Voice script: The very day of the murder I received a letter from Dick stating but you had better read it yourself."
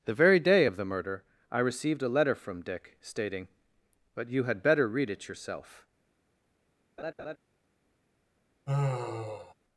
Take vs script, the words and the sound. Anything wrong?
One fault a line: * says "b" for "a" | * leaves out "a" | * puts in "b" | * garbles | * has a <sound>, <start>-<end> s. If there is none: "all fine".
* has a laugh, 7.0-7.4 s
* has a sigh, 8.7-9.5 s